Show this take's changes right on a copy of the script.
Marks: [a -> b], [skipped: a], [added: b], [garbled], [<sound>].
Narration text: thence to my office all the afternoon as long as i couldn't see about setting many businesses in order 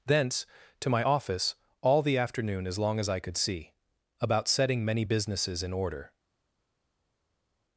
thence to my office all the afternoon as long as i [couldn't -> could] see about setting many businesses in order